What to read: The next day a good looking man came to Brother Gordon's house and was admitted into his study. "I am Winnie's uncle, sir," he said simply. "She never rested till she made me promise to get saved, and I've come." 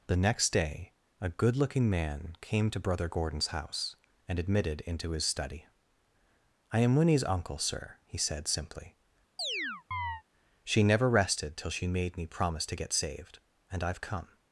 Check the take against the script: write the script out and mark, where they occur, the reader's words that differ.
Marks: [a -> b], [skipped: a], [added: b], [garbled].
The next day a good looking man came to Brother Gordon's house and [skipped: was] admitted into his study. "I am Winnie's uncle, sir," he said simply. "She never rested till she made me promise to get saved, and I've come."